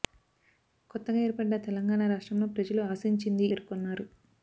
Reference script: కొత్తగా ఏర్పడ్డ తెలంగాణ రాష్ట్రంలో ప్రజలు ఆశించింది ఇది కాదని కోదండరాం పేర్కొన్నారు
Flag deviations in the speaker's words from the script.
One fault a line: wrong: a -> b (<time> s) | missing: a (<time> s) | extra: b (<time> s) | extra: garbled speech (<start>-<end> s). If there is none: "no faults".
missing: ఇది కాదని కోదండరాం (3.5 s)